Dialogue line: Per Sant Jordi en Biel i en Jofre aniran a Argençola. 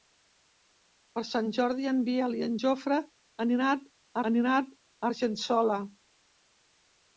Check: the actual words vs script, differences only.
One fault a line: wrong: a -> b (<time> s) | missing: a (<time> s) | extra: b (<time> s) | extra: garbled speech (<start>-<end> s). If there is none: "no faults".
extra: aniran a (4.3 s)